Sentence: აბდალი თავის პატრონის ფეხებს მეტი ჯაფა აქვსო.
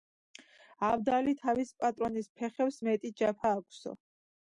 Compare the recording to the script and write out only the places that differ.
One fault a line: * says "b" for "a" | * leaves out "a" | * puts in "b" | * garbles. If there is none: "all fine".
all fine